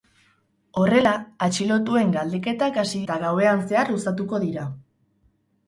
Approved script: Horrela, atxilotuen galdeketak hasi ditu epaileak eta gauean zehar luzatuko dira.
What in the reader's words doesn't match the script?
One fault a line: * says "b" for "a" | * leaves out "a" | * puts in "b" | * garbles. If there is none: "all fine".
* leaves out "ditu epaileak"